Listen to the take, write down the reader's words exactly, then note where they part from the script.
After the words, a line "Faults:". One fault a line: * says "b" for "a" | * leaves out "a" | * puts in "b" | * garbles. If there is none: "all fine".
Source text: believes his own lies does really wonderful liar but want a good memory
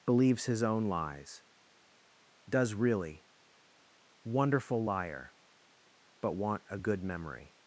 believes his own lies does really wonderful liar but want a good memory
Faults:
all fine